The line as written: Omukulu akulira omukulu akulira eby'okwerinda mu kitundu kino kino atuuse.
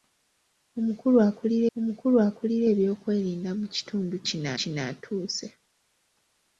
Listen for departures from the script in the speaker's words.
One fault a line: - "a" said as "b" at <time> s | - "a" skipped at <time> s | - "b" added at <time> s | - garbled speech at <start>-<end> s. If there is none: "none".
none